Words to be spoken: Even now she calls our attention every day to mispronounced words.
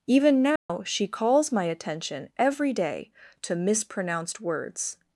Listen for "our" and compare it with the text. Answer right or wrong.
wrong